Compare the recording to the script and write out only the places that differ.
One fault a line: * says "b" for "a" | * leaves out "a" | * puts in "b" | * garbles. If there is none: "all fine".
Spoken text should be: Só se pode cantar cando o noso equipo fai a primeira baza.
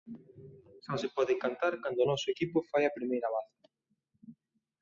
all fine